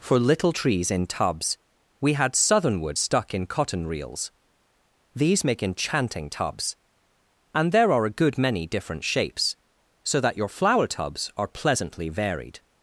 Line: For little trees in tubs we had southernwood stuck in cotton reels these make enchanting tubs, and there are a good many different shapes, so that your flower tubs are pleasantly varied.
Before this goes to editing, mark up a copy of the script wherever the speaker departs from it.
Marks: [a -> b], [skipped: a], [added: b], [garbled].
For little trees in tubs we had southernwood stuck in cotton reels these make enchanting tubs, and there are a good many different shapes, so that your flower tubs are pleasantly varied.